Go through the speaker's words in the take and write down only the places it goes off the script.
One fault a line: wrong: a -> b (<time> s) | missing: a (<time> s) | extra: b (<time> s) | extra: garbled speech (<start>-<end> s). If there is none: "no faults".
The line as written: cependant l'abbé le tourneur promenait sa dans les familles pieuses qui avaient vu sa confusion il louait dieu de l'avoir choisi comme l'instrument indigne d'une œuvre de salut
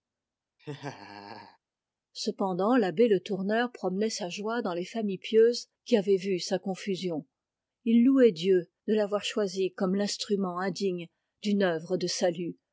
extra: joie (4.3 s)